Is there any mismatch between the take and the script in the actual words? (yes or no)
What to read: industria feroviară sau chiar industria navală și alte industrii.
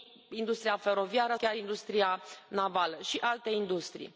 yes